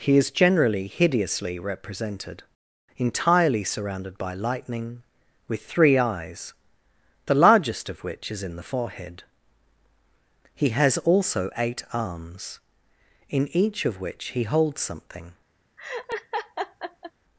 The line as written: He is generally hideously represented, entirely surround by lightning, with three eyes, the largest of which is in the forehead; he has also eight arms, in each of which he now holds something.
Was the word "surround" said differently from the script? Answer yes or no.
yes